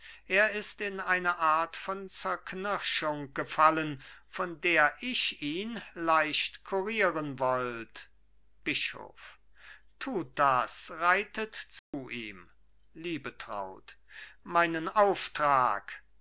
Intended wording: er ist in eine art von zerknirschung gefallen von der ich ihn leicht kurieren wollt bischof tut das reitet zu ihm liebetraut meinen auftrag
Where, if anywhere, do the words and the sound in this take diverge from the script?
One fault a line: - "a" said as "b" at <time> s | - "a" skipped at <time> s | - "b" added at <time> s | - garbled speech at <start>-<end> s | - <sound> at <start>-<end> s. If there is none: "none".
- dropout at 11.8-11.9 s